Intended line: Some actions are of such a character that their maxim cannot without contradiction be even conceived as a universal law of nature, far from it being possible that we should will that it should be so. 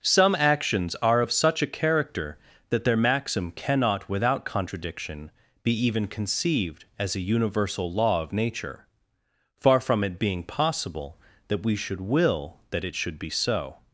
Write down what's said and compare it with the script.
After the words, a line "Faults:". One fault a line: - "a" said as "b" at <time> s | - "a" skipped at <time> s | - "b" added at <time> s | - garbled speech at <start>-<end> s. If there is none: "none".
Some actions are of such a character that their maxim cannot without contradiction be even conceived as a universal law of nature, far from it being possible that we should will that it should be so.
Faults:
none